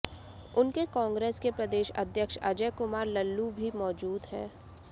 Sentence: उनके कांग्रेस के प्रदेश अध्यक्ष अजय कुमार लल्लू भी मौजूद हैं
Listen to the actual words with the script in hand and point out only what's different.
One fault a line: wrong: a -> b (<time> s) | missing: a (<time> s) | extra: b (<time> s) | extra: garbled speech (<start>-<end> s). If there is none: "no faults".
no faults